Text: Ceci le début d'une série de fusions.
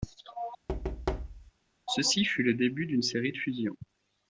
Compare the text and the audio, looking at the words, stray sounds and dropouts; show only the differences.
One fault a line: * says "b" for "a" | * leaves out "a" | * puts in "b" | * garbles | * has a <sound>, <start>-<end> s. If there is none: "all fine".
* has a thud, 0.7-1.5 s
* puts in "fut"